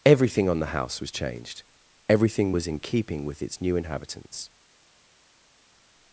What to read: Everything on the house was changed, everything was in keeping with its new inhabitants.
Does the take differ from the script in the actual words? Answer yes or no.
no